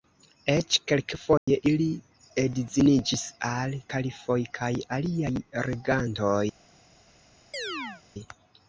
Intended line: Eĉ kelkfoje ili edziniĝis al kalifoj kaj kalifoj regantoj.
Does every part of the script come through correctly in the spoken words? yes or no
no